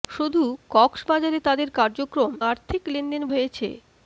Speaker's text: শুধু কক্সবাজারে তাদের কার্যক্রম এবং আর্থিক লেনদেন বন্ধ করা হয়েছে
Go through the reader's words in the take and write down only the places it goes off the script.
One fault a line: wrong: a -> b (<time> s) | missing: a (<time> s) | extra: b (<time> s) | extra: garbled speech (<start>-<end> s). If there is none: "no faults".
missing: এবং (2.3 s)
missing: বন্ধ করা (3.2 s)